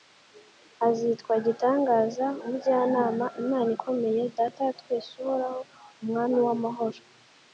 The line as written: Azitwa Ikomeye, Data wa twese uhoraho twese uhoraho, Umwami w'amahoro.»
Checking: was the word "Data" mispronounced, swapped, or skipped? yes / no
no